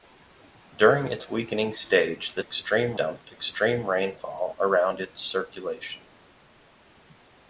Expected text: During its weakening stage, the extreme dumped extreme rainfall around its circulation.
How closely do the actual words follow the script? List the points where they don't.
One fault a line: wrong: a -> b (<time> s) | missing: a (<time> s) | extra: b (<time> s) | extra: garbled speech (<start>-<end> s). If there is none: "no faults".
no faults